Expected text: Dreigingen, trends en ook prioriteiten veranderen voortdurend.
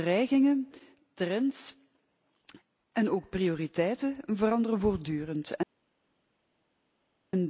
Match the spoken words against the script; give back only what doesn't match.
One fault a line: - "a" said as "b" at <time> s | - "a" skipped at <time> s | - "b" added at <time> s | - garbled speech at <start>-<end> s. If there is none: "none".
none